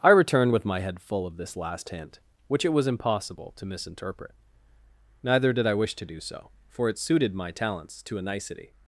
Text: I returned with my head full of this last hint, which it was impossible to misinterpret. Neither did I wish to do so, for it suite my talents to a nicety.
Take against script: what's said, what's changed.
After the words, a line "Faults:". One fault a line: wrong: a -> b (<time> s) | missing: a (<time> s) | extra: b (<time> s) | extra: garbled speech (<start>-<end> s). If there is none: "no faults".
I returned with my head full of this last hint, which it was impossible to misinterpret. Neither did I wish to do so, for it suited my talents to a nicety.
Faults:
wrong: suite -> suited (7.0 s)